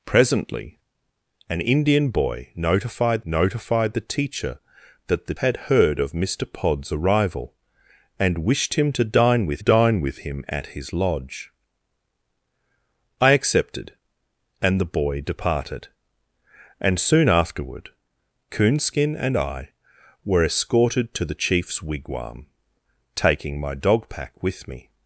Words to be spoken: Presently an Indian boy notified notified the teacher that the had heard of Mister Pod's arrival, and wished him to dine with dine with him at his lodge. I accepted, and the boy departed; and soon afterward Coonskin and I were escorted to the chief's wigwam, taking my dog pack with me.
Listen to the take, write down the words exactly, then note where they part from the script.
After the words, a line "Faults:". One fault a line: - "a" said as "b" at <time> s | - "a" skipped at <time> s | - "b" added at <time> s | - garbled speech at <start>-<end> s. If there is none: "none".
Presently an Indian boy notified notified the teacher that the had heard of Mister Pod's arrival, and wished him to dine with dine with him at his lodge. I accepted, and the boy departed; and soon afterward Coonskin and I were escorted to the chief's wigwam, taking my dog pack with me.
Faults:
none